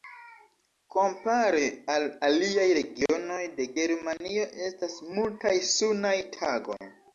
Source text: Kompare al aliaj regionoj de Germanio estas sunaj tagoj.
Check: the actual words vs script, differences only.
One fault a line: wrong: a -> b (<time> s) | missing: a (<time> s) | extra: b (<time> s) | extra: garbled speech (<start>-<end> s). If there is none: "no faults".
extra: multaj (5.2 s)